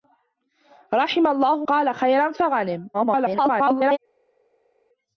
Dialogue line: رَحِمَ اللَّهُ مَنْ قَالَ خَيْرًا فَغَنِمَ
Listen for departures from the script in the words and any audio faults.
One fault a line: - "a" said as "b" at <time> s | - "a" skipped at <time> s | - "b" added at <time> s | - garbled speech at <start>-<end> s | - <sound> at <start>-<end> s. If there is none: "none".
- "مَنْ" skipped at 1.6 s
- garbled speech at 2.9-4.0 s